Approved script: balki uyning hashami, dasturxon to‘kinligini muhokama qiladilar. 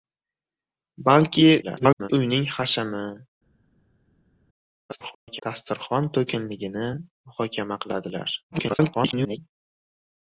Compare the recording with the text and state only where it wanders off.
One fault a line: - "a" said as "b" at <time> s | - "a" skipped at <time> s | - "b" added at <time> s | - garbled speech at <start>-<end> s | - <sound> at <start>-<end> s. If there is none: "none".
- garbled speech at 1.6-2.1 s
- garbled speech at 4.9-5.4 s
- garbled speech at 8.5-9.6 s